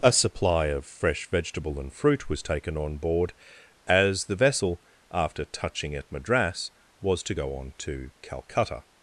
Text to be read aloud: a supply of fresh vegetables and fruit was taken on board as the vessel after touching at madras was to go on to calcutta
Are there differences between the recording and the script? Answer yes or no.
yes